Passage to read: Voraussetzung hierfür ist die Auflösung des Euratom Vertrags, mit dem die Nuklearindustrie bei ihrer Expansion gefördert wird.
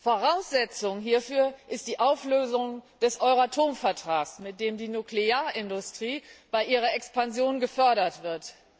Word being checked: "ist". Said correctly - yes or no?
yes